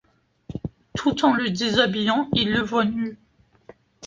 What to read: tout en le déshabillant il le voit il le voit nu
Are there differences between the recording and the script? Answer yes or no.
yes